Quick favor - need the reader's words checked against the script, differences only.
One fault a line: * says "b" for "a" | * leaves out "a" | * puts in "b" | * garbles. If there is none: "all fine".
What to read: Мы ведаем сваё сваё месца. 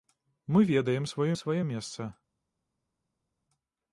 all fine